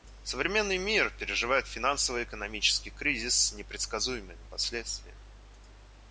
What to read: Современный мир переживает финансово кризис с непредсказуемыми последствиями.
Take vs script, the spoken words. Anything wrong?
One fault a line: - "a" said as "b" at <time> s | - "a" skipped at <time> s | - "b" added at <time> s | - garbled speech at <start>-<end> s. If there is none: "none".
- "экономический" added at 2.2 s